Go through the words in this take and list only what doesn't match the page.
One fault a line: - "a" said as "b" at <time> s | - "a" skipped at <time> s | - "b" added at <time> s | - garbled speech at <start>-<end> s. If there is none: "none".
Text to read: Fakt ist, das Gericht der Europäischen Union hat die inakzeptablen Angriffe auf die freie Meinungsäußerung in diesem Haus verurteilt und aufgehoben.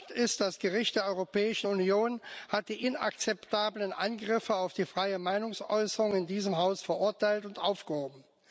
none